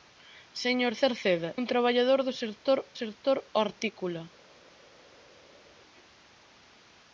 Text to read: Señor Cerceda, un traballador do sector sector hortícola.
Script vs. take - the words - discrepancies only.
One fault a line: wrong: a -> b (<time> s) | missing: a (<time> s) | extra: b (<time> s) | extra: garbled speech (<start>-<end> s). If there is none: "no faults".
no faults